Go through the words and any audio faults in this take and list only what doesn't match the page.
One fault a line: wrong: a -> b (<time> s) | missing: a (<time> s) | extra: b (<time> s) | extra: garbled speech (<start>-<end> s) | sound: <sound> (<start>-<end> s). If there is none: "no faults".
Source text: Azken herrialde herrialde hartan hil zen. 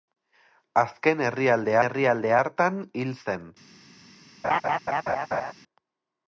sound: laugh (4.4-5.5 s)